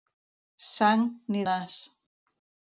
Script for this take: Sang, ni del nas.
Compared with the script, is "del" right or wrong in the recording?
wrong